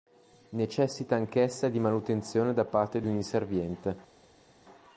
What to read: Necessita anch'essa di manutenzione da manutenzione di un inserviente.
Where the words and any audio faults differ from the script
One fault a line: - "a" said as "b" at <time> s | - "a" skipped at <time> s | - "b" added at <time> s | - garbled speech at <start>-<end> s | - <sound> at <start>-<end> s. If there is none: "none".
- "manutenzione" said as "parte" at 2.6 s